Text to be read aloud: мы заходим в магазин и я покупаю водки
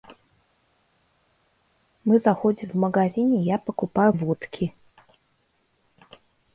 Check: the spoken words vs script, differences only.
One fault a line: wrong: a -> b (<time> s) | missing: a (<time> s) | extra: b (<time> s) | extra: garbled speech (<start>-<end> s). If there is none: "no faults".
no faults